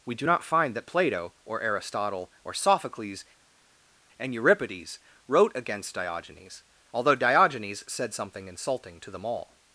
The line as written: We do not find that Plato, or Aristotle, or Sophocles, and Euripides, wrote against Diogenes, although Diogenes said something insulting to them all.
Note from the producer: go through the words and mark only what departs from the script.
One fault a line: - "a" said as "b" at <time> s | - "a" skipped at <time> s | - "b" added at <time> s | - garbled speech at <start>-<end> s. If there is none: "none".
none